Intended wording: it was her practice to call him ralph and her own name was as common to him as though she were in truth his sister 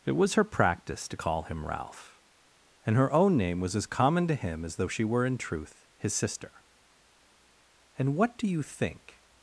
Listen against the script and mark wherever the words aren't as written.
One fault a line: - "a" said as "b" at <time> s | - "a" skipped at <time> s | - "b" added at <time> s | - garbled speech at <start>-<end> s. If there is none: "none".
- "and what do you think" added at 8.0 s